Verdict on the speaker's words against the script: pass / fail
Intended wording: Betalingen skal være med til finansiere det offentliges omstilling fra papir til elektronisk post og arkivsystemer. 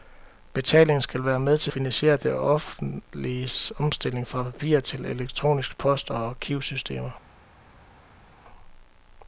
pass